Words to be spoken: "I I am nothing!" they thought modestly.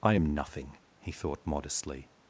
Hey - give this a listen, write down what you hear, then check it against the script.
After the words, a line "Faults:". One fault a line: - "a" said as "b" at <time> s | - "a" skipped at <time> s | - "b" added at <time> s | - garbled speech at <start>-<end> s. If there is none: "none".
"I am nothing!" he thought modestly.
Faults:
- "I" skipped at 0.1 s
- "they" said as "he" at 1.0 s